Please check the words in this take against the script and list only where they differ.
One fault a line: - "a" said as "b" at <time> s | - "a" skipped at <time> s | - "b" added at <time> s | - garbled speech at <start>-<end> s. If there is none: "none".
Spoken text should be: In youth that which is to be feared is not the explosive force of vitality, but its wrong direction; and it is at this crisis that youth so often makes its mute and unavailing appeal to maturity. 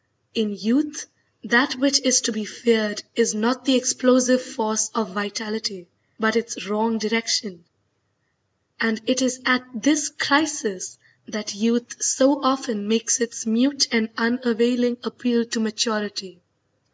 none